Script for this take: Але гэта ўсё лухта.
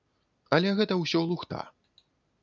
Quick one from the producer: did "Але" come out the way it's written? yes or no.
yes